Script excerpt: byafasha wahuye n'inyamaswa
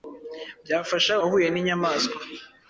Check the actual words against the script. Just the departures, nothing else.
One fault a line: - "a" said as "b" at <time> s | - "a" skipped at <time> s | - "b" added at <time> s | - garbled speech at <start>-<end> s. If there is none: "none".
none